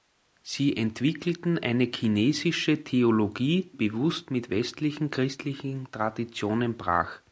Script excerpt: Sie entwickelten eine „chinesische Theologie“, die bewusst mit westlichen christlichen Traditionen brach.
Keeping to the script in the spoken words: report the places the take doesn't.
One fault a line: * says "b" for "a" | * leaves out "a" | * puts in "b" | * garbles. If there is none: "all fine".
* leaves out "die"